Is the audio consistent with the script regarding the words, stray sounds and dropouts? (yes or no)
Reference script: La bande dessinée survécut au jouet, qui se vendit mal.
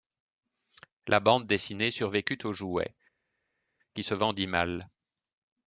yes